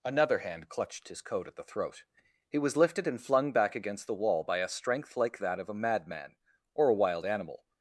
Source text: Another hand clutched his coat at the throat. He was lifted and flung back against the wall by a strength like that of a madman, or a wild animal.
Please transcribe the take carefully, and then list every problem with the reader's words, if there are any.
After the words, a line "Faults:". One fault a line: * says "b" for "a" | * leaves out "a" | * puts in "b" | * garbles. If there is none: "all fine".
Another hand clutched his coat at the throat. He was lifted and flung back against the wall by a strength like that of a madman, or a wild animal.
Faults:
all fine